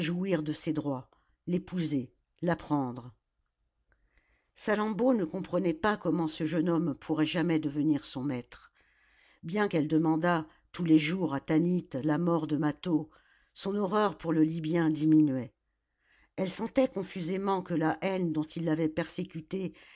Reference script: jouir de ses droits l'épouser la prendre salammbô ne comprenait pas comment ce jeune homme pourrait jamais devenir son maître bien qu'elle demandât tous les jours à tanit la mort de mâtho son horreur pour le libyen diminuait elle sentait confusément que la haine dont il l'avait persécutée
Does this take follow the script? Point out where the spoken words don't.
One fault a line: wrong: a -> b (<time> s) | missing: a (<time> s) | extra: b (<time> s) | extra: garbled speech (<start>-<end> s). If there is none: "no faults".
no faults